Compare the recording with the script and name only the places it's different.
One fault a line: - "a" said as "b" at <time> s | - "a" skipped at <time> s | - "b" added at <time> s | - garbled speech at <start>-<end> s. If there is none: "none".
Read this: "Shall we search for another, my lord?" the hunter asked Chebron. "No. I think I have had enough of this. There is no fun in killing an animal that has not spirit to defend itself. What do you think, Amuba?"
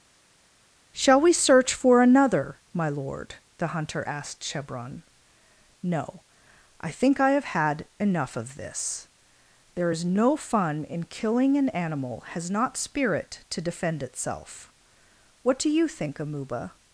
- "that" skipped at 12.2 s